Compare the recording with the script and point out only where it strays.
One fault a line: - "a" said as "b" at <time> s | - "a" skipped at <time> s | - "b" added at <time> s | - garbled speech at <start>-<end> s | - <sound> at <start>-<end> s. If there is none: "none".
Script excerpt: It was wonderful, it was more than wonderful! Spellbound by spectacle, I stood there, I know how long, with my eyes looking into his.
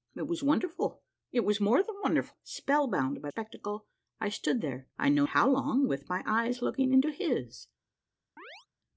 - chirp at 8.4-8.7 s